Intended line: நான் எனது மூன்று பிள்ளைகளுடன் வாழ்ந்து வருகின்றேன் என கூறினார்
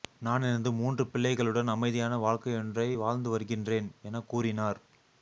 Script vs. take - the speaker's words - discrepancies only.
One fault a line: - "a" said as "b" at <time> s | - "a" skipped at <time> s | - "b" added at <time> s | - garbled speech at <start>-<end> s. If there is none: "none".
- "அமைதியான வாழ்க்கையொன்றை" added at 1.7 s